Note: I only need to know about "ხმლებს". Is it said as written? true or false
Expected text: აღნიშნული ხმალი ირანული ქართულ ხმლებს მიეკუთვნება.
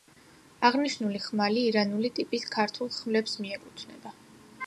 true